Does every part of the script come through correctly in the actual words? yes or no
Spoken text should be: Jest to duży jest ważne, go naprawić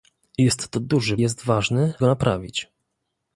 yes